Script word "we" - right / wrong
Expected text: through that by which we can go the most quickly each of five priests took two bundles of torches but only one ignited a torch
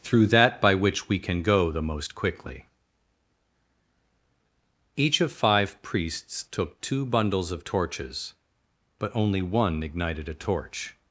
right